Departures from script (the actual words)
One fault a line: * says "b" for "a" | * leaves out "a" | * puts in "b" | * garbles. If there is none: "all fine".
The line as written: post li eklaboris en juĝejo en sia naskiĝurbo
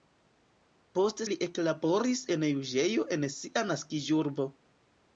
all fine